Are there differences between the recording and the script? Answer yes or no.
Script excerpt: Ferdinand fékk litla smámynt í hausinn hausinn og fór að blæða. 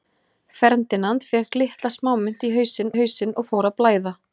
no